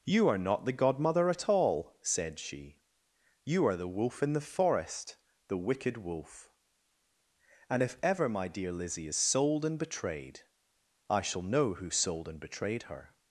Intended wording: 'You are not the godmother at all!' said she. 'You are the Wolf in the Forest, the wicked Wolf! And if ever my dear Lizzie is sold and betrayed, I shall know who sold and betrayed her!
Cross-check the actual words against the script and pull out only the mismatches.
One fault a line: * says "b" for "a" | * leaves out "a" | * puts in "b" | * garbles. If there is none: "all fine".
all fine